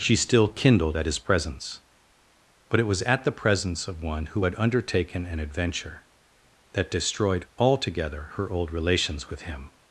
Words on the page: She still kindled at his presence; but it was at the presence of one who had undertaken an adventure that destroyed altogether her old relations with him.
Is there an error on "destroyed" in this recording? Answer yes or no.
no